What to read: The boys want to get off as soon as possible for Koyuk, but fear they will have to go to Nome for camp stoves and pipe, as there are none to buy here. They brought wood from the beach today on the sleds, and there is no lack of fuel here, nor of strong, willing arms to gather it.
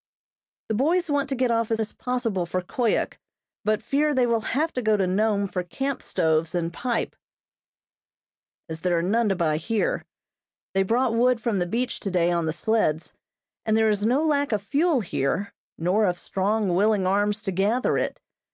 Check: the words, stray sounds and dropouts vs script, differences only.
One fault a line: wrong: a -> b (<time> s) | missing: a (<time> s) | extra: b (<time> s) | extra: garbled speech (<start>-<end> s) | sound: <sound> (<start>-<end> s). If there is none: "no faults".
missing: soon (1.8 s)